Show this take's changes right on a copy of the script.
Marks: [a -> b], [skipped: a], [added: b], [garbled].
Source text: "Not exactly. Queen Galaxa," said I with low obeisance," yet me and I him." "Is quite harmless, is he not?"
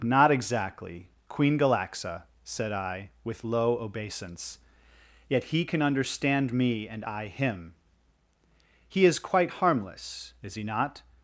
"Not exactly. Queen Galaxa," said I with low obeisance," yet [added: he can understand] me and I him." [added: He] "Is quite harmless, is he not?"